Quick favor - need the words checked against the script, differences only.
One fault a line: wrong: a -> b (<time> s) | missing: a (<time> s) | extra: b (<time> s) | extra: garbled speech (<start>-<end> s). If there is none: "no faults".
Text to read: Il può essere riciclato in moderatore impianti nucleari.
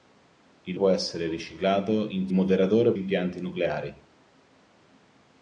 no faults